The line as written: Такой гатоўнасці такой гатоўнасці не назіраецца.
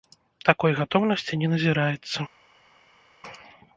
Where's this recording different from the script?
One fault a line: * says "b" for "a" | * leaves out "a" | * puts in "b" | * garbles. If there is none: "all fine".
* leaves out "такой гатоўнасці"